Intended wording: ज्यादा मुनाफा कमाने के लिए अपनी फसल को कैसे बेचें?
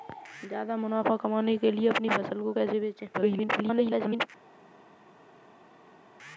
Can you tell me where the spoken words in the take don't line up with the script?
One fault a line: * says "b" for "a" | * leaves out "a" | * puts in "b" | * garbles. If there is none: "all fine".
* garbles